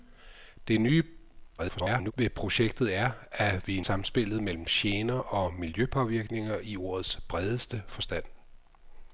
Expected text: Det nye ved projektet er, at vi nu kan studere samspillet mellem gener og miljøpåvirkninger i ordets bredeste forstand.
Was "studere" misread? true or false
true